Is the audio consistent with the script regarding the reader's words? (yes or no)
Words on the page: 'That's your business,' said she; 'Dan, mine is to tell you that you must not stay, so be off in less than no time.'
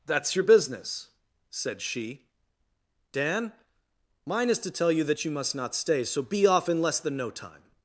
yes